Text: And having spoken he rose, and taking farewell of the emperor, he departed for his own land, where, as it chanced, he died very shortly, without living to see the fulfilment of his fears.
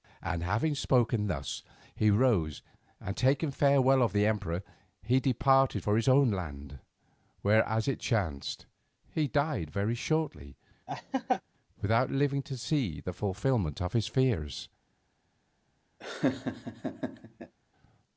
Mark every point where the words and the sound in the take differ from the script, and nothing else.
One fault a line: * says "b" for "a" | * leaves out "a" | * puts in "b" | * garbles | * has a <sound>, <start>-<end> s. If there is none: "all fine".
* puts in "thus"
* has a laugh, 10.9-11.4 s
* has a laugh, 16.0-17.5 s